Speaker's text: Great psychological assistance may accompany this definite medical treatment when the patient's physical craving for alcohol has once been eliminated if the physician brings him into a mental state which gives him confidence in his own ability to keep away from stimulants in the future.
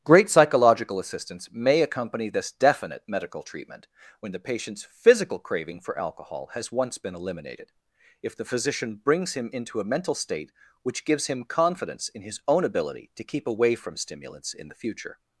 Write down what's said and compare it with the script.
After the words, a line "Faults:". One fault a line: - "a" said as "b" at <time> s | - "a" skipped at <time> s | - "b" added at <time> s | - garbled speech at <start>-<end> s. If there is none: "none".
Great psychological assistance may accompany this definite medical treatment when the patient's physical craving for alcohol has once been eliminated if the physician brings him into a mental state which gives him confidence in his own ability to keep away from stimulants in the future.
Faults:
none